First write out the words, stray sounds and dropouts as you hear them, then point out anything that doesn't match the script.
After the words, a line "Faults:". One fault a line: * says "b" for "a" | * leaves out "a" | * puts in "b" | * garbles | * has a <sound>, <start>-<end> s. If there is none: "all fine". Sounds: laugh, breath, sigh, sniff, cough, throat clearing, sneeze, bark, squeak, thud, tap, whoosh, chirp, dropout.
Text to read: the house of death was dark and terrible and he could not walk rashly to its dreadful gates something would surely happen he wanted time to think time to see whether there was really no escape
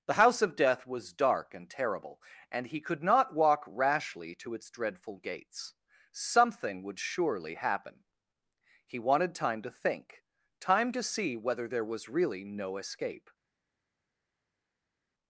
the house of death was dark and terrible and he could not walk rashly to its dreadful gates something would surely happen he wanted time to think time to see whether there was really no escape
Faults:
all fine